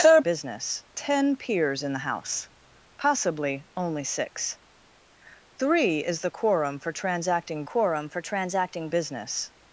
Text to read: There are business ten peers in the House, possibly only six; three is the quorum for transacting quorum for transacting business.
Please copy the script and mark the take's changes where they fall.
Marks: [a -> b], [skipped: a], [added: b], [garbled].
There are business ten peers in the House, possibly only six; three is the quorum for transacting quorum for transacting business.